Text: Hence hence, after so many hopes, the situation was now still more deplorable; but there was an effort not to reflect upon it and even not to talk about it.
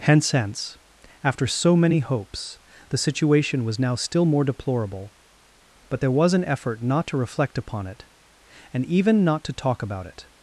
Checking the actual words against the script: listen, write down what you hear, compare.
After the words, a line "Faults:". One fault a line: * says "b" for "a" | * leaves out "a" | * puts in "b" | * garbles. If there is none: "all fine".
Hence hence, after so many hopes, the situation was now still more deplorable; but there was an effort not to reflect upon it and even not to talk about it.
Faults:
all fine